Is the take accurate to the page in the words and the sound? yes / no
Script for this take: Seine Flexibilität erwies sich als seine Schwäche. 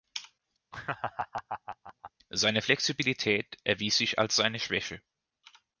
no